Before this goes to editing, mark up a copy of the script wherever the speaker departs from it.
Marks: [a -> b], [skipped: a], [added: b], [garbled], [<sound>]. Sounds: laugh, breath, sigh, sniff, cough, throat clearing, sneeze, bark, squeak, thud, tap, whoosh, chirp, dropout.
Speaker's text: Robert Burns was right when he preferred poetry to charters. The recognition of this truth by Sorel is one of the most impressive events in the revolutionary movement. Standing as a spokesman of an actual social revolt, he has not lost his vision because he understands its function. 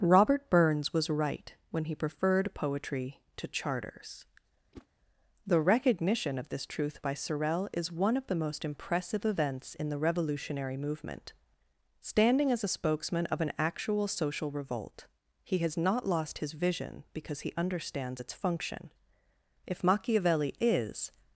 Robert Burns was right when he preferred poetry to charters. [whoosh] The recognition of this truth by Sorel is one of the most impressive events in the revolutionary movement. Standing as a spokesman of an actual social revolt, he has not lost his vision because he understands its function. [added: If Machiavelli is]